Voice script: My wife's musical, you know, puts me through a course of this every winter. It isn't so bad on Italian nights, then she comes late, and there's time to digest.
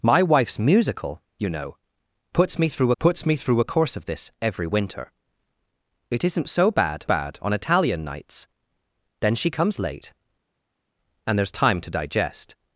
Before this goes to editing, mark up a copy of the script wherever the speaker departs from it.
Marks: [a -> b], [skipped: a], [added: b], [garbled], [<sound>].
My wife's musical, you know, puts me through [added: puts me through] a course of this every winter. It isn't so bad [added: bad] on Italian nights, then she comes late, and there's time to digest.